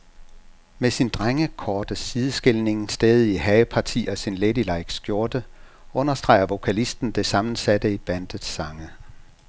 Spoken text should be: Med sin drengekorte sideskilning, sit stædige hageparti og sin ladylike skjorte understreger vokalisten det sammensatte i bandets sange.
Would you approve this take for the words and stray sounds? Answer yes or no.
no